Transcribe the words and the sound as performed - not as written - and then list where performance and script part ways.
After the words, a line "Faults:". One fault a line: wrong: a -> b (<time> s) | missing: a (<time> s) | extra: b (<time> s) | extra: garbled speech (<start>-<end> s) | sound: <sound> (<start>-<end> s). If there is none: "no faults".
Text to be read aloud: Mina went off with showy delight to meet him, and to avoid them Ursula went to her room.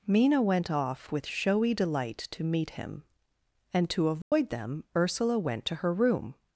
Mina went off with showy delight to meet him, and to avoid them Ursula went to her room.
Faults:
sound: dropout (4.2-4.3 s)